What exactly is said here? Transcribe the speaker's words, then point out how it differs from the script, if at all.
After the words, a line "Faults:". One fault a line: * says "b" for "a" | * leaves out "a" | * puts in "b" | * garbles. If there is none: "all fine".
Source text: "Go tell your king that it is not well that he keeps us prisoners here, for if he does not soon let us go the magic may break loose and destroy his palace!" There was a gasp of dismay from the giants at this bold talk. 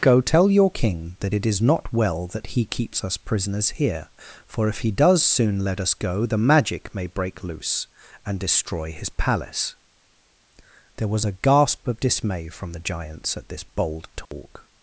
"Go tell your king that it is not well that he keeps us prisoners here, for if he does soon let us go the magic may break loose and destroy his palace!" There was a gasp of dismay from the giants at this bold talk.
Faults:
* leaves out "not"